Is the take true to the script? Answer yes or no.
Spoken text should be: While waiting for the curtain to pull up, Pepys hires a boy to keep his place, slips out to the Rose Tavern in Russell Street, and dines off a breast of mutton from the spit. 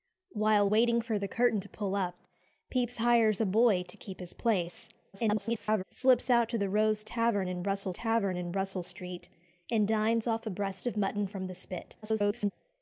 no